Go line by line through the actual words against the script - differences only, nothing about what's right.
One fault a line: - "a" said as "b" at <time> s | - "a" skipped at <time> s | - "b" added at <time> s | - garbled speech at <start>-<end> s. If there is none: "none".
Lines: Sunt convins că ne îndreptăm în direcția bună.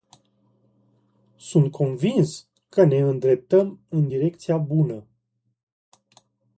none